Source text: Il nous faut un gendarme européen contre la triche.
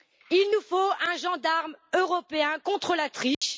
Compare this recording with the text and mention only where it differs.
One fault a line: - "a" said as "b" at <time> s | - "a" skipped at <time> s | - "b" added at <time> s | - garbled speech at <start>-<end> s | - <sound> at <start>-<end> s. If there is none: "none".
- dropout at 3.3-3.4 s